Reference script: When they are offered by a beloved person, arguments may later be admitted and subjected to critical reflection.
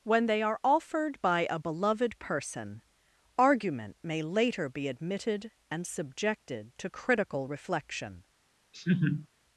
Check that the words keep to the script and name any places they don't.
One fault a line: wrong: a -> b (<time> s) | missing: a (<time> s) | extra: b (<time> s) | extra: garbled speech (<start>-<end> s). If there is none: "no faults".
wrong: arguments -> argument (3.4 s)